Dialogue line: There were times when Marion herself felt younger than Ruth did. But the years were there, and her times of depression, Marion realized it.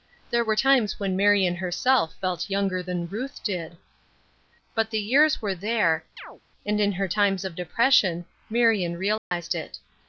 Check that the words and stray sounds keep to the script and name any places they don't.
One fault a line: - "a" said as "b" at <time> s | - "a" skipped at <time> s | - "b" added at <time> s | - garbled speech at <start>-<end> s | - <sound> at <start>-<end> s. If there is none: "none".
- chirp at 6.2-6.4 s
- "in" added at 6.8 s
- dropout at 9.2-9.3 s